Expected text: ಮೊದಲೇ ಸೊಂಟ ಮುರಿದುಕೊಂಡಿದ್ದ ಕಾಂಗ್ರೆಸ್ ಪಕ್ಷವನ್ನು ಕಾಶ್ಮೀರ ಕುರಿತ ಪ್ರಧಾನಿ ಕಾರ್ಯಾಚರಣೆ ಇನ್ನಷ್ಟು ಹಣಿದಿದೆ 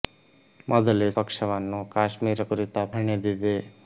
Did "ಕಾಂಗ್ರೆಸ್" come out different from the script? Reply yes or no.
yes